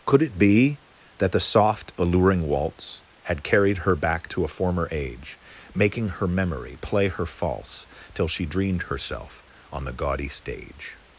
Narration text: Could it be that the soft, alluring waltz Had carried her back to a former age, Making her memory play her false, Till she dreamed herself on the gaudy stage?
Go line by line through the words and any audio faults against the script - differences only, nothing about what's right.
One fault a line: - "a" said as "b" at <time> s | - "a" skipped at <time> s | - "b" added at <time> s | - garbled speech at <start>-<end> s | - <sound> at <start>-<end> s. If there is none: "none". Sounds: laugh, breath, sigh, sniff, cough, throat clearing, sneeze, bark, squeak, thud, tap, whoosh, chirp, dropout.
none